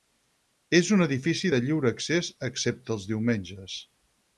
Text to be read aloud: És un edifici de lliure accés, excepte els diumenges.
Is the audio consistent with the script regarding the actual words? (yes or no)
yes